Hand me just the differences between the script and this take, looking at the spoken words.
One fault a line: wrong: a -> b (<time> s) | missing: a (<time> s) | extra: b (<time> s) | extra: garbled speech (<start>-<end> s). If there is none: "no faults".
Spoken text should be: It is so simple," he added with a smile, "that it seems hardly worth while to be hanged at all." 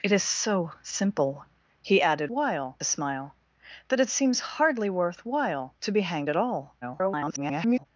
wrong: with -> while (2.3 s)
extra: garbled speech (6.8-7.9 s)